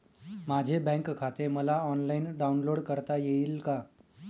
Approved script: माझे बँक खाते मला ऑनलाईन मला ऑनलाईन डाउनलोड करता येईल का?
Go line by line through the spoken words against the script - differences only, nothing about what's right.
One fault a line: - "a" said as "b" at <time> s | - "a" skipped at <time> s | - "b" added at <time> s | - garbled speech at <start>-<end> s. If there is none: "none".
- "मला ऑनलाईन" skipped at 2.2 s